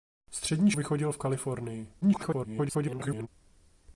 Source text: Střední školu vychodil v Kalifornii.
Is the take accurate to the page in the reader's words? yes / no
no